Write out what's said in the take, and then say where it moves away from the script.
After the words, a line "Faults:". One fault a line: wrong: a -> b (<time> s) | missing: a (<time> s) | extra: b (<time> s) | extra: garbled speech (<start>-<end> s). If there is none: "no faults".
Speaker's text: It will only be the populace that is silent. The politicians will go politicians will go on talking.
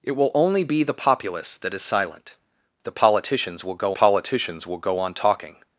It will only be the populace that is silent. The politicians will go politicians will go on talking.
Faults:
no faults